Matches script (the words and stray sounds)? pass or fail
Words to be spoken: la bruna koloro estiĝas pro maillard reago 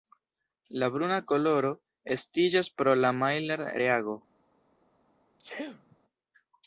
fail